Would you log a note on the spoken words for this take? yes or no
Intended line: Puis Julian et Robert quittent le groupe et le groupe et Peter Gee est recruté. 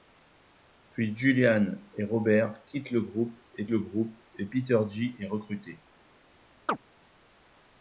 no